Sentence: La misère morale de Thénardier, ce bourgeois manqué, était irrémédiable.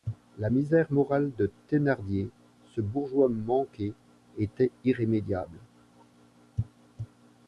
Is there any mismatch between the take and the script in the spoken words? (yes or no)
no